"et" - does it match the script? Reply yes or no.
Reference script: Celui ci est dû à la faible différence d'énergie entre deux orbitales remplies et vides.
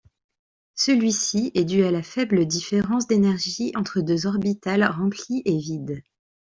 yes